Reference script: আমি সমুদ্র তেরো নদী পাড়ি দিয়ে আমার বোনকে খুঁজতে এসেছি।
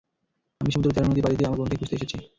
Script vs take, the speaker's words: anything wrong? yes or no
no